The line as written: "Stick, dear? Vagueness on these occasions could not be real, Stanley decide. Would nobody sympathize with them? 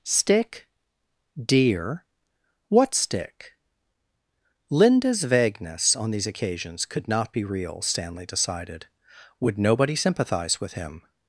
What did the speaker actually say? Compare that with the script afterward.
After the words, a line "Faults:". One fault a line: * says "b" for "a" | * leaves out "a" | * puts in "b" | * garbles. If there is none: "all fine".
"Stick, dear? What stick?" Linda's vagueness on these occasions could not be real, Stanley decided. Would nobody sympathize with him?
Faults:
* puts in "What stick Linda's"
* says "decided" for "decide"
* says "him" for "them"